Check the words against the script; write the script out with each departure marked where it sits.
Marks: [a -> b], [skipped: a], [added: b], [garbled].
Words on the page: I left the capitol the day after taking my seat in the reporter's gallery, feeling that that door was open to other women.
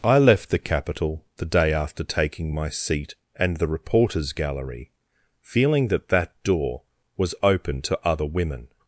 I left the capitol the day after taking my seat [in -> and] the reporter's gallery, feeling that that door was open to other women.